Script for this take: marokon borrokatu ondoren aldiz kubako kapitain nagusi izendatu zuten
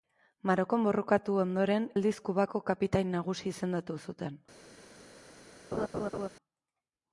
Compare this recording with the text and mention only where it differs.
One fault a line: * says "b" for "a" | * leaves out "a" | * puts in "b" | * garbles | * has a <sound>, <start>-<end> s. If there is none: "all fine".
* has a laugh, 5.7-6.3 s